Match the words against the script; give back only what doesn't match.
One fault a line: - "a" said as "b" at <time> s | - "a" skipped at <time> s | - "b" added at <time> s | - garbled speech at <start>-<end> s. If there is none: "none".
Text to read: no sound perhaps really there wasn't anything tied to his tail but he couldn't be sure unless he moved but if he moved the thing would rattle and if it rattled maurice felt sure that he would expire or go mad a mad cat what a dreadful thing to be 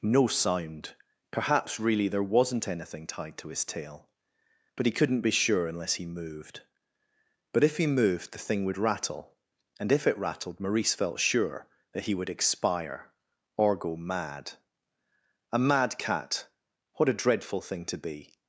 none